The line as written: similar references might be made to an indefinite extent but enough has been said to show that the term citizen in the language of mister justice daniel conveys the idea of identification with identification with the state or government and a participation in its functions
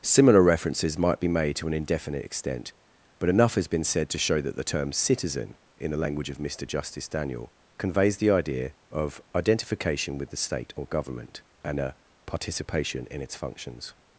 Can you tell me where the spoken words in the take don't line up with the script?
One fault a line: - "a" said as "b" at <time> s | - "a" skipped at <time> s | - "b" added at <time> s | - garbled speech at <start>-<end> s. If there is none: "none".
- "identification with" skipped at 10.3 s